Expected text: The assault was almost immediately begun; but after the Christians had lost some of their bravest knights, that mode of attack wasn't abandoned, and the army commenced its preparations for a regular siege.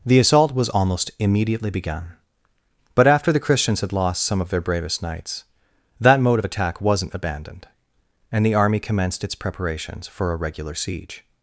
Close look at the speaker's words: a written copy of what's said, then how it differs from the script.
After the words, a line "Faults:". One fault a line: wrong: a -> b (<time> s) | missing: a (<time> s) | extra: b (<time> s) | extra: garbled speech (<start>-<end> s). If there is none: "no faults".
The assault was almost immediately begun; but after the Christians had lost some of their bravest knights, that mode of attack wasn't abandoned, and the army commenced its preparations for a regular siege.
Faults:
no faults